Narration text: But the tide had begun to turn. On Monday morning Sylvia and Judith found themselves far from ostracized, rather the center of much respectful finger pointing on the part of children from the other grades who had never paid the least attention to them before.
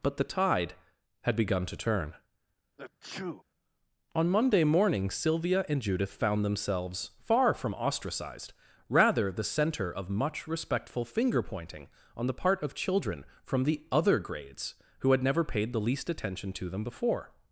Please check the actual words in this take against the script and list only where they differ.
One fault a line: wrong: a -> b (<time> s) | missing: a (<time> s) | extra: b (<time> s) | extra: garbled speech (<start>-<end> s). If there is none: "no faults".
no faults